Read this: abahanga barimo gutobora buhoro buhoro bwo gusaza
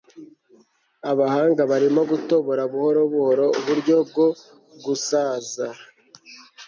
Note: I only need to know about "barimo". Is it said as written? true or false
true